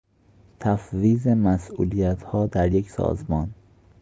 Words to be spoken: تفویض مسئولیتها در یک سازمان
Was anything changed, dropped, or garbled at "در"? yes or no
no